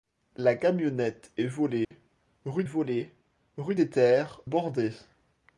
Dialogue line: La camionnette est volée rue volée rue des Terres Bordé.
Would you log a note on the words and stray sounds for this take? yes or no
yes